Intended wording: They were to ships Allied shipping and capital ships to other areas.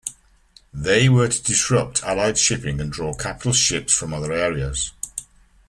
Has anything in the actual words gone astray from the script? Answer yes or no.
yes